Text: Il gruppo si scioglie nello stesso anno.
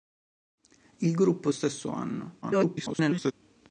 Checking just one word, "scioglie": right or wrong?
wrong